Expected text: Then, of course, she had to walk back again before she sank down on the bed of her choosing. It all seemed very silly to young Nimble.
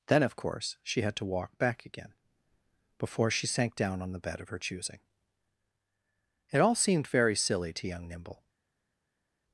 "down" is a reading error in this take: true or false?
false